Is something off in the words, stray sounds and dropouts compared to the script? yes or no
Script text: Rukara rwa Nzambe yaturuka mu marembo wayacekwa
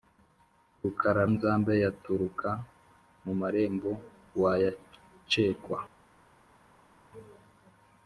yes